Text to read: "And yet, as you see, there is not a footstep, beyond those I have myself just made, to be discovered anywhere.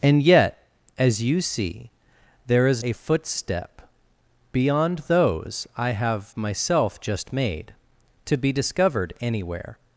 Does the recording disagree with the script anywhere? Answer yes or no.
yes